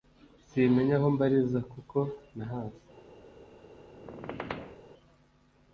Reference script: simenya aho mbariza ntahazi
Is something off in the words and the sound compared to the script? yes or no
yes